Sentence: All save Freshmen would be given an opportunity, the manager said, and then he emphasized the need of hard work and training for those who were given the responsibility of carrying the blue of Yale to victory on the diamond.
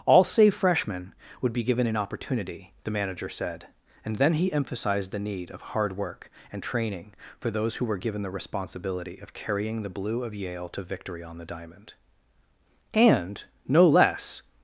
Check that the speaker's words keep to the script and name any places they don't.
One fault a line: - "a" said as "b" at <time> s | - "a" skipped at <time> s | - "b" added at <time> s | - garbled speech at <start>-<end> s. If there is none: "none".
- "And no less" added at 12.9 s